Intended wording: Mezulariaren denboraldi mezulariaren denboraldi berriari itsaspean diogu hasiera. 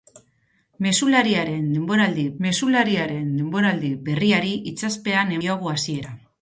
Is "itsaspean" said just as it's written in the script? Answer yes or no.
yes